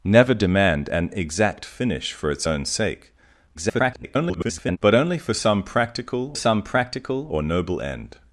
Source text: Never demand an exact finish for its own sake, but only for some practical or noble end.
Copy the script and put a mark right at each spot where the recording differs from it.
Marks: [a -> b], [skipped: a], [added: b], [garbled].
Never demand an exact finish for its own sake, [garbled] but only for some practical [added: some practical] or noble end.